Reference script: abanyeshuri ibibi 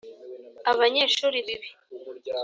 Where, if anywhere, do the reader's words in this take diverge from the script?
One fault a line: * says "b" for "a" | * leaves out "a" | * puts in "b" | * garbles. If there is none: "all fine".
all fine